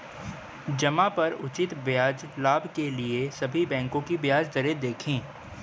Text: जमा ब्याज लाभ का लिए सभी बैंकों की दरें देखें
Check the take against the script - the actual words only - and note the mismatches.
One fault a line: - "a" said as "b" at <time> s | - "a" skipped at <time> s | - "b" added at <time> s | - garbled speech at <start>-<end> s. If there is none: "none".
- "पर उचित" added at 1.1 s
- "का" said as "के" at 2.8 s
- "ब्याज" added at 4.2 s